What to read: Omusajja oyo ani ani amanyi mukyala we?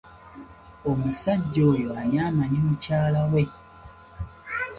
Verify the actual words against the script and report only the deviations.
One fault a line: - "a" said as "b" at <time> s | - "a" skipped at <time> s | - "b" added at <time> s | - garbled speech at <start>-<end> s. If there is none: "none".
- "ani" skipped at 2.2 s